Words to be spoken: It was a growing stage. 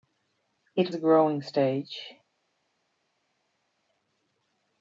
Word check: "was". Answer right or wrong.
wrong